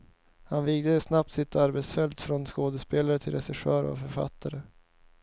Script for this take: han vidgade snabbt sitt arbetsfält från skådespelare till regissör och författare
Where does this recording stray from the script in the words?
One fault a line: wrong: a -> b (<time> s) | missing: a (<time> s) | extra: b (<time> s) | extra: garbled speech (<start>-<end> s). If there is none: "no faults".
no faults